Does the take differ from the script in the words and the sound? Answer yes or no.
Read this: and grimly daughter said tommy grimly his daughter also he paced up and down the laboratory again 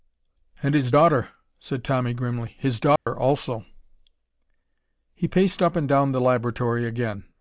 yes